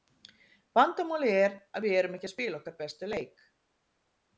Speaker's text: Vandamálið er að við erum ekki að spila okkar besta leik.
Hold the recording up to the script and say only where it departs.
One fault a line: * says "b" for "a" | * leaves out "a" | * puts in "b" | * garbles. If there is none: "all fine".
all fine